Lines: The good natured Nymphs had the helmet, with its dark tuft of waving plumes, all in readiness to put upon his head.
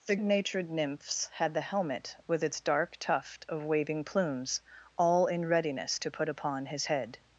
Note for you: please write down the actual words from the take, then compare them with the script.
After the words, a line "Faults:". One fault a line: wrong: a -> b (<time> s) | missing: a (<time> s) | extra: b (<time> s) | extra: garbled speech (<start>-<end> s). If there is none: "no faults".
The natured Nymphs had the helmet, with its dark tuft of waving plumes, all in readiness to put upon his head.
Faults:
missing: good (0.1 s)